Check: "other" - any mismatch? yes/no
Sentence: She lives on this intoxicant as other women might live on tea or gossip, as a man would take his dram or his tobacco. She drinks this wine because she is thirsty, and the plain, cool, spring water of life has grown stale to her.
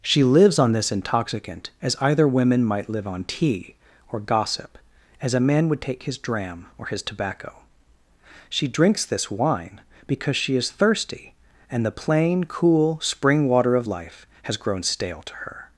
yes